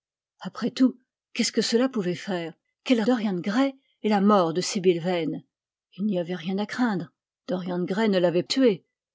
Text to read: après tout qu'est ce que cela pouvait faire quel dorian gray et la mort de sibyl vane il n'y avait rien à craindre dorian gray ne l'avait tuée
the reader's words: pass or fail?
pass